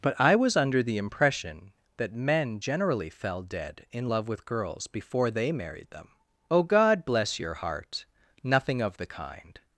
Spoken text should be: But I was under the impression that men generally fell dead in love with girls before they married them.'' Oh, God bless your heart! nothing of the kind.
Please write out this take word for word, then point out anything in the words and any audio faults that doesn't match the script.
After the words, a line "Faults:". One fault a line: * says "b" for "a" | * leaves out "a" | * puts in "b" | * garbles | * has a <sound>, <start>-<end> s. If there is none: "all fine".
But I was under the impression that men generally fell dead in love with girls before they married them.'' Oh, God bless your heart! nothing of the kind.
Faults:
all fine